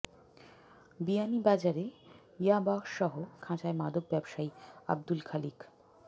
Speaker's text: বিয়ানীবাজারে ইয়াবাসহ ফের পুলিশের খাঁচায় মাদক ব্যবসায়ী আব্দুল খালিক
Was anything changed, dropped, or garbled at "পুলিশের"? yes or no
yes